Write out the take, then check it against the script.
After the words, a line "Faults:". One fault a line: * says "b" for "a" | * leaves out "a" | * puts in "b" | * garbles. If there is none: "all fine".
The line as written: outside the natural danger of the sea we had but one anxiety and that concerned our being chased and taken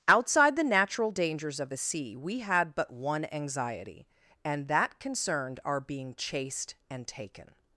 outside the natural dangers of the sea we had but one anxiety and that concerned our being chased and taken
Faults:
* says "dangers" for "danger"